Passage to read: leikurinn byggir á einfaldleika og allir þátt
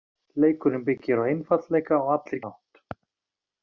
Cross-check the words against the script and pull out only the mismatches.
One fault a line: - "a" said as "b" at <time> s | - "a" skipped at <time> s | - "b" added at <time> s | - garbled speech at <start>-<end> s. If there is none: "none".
none